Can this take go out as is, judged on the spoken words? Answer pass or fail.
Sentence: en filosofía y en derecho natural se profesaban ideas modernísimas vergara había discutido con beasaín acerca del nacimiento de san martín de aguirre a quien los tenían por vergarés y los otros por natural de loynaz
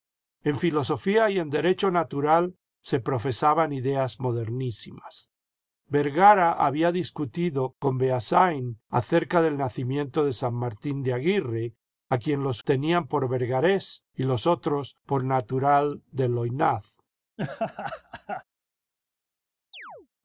pass